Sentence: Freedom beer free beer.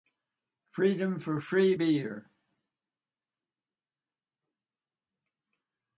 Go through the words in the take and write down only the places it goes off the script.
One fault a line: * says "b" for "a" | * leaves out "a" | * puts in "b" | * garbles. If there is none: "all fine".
* says "for" for "beer"